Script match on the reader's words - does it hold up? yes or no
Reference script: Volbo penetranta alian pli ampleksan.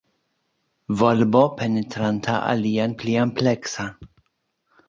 yes